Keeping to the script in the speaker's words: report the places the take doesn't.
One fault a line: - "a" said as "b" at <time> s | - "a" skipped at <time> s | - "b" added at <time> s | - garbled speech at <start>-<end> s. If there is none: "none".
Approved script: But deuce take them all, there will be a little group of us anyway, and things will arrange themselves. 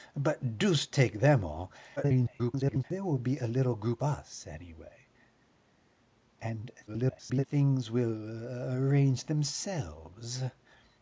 - garbled speech at 2.0-2.8 s
- "of" skipped at 4.0 s
- garbled speech at 6.9-7.5 s